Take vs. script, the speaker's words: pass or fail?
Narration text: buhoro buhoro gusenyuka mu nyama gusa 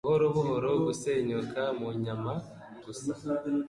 pass